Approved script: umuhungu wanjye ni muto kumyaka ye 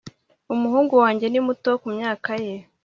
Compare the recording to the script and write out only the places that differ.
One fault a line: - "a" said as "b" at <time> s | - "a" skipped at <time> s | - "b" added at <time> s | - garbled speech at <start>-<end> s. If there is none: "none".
none